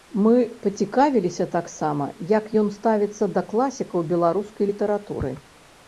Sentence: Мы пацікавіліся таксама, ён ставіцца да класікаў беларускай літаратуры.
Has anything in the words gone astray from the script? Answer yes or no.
yes